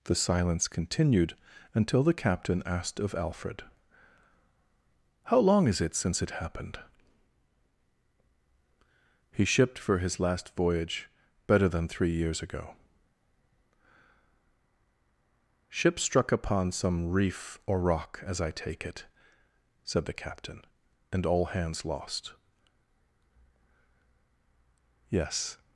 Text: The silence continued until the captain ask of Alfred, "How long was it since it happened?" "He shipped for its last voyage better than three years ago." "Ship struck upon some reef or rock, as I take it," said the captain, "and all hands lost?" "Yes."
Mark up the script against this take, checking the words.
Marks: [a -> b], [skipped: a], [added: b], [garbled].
The silence continued until the captain [ask -> asked] of Alfred, "How long [was -> is] it since it happened?" "He shipped for [its -> his] last voyage better than three years ago." "Ship struck upon some reef or rock, as I take it," said the captain, "and all hands lost?" "Yes."